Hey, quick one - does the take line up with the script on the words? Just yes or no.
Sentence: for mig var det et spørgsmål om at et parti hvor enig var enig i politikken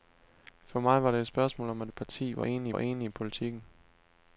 yes